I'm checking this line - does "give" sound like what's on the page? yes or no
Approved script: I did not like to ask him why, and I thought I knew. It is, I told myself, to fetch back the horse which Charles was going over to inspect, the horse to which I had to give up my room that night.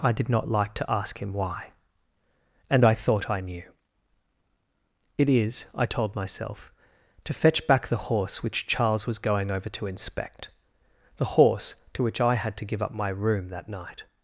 yes